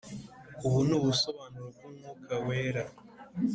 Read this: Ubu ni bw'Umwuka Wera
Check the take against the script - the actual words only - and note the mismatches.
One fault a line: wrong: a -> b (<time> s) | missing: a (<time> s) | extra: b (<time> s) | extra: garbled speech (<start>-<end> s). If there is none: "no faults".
extra: ubusobanuro (1.0 s)